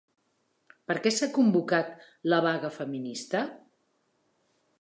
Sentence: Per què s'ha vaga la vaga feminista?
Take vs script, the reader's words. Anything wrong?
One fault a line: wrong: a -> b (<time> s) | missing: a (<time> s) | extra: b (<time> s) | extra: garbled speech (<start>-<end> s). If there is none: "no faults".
wrong: vaga -> convocat (1.4 s)